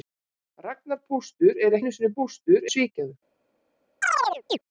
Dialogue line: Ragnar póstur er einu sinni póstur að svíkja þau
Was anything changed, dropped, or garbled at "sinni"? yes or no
no